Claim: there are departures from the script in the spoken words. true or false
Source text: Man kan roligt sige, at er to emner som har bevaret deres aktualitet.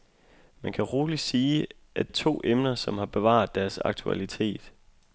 false